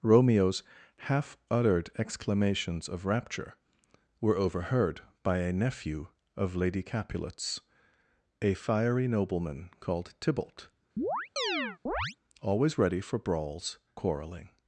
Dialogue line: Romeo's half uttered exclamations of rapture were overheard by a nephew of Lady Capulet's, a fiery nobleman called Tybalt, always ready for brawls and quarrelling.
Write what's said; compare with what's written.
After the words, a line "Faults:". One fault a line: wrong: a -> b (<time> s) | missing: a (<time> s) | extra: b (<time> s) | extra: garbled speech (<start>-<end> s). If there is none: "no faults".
Romeo's half uttered exclamations of rapture were overheard by a nephew of Lady Capulet's, a fiery nobleman called Tybalt, always ready for brawls quarrelling.
Faults:
missing: and (13.8 s)